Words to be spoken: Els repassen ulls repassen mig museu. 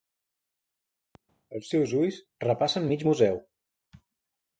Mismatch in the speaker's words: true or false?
true